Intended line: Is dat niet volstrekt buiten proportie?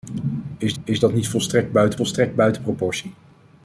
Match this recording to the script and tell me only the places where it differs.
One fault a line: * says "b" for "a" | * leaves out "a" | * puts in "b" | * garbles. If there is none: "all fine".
* puts in "is"
* puts in "volstrekt buiten"